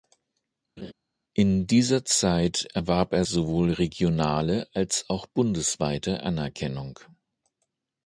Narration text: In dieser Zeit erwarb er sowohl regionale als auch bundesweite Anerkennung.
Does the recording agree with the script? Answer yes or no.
yes